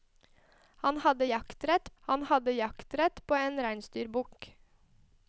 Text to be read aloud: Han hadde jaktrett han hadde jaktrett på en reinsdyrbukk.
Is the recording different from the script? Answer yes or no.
no